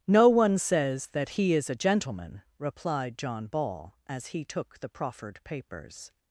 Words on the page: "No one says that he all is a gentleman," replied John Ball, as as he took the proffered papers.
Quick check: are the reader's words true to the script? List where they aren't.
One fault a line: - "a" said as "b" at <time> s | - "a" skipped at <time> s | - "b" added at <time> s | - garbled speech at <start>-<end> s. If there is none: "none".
- "all" skipped at 1.5 s
- "as" skipped at 4.3 s